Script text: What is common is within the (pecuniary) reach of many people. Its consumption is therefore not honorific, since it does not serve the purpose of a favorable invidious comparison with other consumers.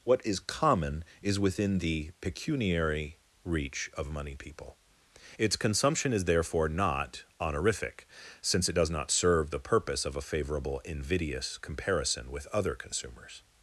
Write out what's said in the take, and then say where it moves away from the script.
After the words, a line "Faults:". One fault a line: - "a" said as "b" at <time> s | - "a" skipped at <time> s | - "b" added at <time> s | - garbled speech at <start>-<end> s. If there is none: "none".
What is common is within the (pecuniary) reach of money people. Its consumption is therefore not honorific, since it does not serve the purpose of a favorable invidious comparison with other consumers.
Faults:
- "many" said as "money" at 4.1 s